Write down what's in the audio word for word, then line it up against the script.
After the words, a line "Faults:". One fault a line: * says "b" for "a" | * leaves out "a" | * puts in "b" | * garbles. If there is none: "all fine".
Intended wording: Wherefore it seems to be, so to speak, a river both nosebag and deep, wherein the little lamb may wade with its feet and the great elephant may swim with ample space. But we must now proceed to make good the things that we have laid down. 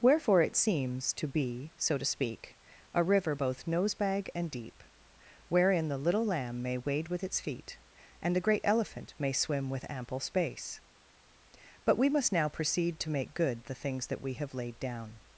Wherefore it seems to be, so to speak, a river both nosebag and deep, wherein the little lamb may wade with its feet and the great elephant may swim with ample space. But we must now proceed to make good the things that we have laid down.
Faults:
all fine